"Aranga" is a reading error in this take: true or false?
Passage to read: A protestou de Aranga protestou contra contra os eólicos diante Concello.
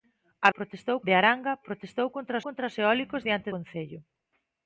false